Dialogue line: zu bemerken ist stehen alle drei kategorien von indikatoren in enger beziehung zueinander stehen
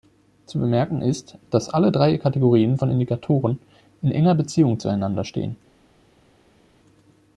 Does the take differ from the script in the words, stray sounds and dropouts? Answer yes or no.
yes